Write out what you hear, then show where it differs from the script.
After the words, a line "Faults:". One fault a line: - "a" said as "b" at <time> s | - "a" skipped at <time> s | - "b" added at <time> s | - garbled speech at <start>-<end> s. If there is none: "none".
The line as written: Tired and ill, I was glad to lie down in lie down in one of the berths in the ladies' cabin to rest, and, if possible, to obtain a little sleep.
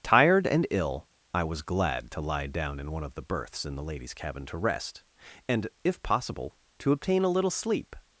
Tired and ill, I was glad to lie down in one of the berths in the ladies' cabin to rest, and, if possible, to obtain a little sleep.
Faults:
- "lie down in" skipped at 2.9 s